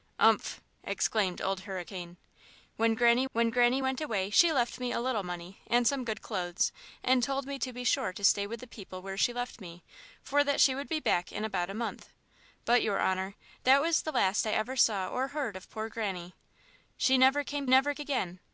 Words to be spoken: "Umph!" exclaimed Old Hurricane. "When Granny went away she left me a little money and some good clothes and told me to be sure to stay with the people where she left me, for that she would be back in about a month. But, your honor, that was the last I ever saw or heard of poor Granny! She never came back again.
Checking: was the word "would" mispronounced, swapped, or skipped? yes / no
no